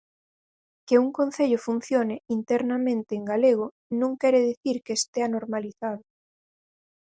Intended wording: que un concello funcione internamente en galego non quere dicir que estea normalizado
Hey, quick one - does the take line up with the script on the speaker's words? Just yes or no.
yes